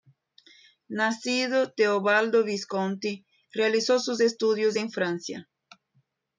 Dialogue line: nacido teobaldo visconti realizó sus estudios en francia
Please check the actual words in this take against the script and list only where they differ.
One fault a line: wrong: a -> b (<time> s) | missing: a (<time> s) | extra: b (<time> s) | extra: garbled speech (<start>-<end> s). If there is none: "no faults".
no faults